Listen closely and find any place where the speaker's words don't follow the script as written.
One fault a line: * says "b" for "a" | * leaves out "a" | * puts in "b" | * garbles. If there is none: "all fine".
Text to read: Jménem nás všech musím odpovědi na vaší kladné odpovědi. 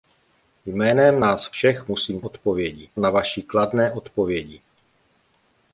all fine